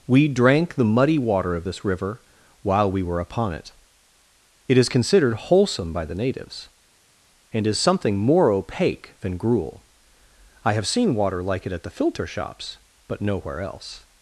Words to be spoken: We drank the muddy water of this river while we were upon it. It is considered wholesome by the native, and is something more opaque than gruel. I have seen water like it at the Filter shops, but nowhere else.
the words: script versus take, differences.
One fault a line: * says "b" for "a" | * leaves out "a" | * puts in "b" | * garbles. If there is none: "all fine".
* says "natives" for "native"